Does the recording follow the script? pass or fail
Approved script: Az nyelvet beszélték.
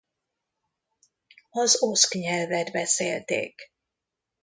fail